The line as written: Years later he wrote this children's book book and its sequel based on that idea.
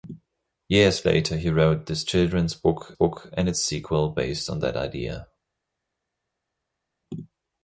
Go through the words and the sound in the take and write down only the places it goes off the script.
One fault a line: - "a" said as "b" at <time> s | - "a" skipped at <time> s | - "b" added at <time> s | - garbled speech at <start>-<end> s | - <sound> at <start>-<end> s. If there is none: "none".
none